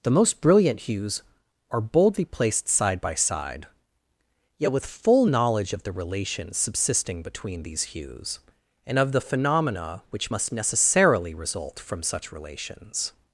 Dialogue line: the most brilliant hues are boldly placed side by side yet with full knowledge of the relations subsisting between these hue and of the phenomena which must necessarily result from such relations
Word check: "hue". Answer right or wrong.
wrong